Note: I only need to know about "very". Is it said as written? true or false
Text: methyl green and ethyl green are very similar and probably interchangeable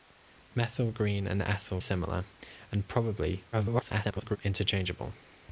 false